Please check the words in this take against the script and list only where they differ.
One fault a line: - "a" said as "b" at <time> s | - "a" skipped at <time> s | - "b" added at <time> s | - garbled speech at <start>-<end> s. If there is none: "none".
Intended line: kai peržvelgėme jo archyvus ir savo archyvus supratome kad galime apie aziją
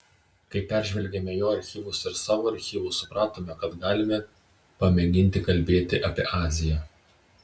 - "pamėginti kalbėti" added at 4.8 s